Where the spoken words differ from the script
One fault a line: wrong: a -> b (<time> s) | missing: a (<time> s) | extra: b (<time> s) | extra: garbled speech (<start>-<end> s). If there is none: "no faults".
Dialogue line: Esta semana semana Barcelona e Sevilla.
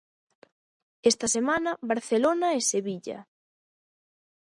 missing: semana (1.7 s)